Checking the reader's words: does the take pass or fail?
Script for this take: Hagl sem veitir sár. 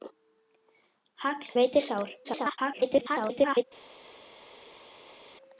fail